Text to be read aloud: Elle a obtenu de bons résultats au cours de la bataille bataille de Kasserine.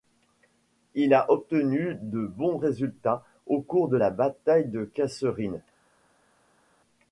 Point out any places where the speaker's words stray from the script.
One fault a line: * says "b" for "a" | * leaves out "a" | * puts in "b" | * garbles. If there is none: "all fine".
* says "Il" for "Elle"
* leaves out "bataille"